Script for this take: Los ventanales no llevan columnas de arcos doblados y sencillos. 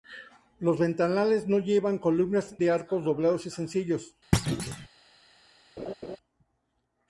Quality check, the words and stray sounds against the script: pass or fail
fail